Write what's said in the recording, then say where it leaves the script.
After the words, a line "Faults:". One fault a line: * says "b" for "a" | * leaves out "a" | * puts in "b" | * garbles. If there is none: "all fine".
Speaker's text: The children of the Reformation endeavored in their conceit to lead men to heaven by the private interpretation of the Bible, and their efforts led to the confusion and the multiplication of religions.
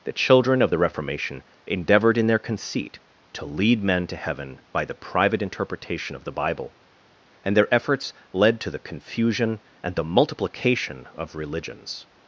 The children of the Reformation endeavored in their conceit to lead men to heaven by the private interpretation of the Bible, and their efforts led to the confusion and the multiplication of religions.
Faults:
all fine